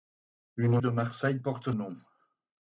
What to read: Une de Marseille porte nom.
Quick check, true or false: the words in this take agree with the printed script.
true